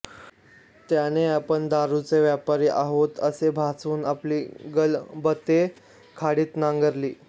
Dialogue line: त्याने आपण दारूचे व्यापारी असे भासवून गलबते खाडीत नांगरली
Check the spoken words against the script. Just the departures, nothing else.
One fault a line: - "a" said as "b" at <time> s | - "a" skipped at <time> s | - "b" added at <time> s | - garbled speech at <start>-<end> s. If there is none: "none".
- "आहोत" added at 2.7 s
- "आपली" added at 4.0 s